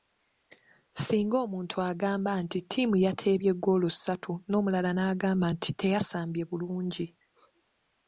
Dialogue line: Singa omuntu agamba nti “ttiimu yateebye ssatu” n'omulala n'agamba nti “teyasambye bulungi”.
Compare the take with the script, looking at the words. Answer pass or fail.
fail